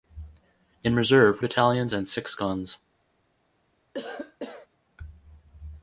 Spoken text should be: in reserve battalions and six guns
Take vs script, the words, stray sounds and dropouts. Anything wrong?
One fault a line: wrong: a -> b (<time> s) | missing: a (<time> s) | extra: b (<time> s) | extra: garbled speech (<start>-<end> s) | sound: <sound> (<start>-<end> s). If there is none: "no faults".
sound: cough (3.9-4.7 s)